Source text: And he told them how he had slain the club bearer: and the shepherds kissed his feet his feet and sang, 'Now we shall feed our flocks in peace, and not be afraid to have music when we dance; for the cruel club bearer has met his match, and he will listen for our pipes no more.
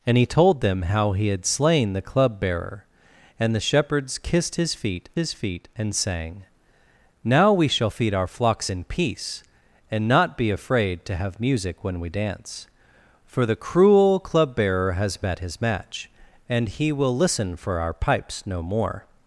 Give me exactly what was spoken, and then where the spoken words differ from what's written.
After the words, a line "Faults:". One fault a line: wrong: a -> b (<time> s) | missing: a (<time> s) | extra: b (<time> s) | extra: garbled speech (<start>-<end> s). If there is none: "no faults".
And he told them how he had slain the club bearer: and the shepherds kissed his feet his feet and sang, 'Now we shall feed our flocks in peace, and not be afraid to have music when we dance; for the cruel club bearer has met his match, and he will listen for our pipes no more.
Faults:
no faults